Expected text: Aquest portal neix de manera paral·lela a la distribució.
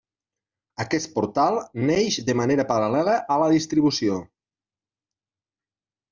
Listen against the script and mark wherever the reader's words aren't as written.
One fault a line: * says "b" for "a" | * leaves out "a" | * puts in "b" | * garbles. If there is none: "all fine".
all fine